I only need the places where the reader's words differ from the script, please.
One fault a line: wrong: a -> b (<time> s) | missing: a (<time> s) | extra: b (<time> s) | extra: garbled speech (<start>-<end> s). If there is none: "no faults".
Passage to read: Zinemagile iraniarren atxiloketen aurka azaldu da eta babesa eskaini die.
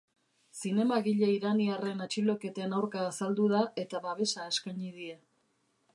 no faults